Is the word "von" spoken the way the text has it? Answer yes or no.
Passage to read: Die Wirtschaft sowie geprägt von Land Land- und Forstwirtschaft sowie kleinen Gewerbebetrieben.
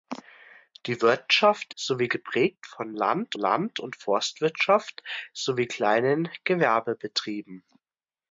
yes